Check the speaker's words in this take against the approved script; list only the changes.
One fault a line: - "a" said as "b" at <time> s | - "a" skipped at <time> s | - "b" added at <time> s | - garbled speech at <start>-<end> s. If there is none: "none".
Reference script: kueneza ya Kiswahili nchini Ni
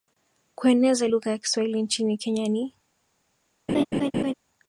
- "lugha" added at 1.0 s
- "Kenya" added at 2.2 s